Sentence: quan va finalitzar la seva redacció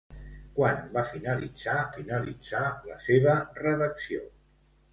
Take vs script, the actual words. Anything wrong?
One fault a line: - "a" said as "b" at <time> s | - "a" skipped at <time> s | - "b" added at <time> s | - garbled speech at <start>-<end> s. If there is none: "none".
- "finalitzar" added at 1.9 s